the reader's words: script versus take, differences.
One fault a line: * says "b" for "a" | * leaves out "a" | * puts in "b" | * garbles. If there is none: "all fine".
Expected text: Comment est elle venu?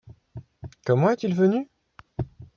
* says "il" for "elle"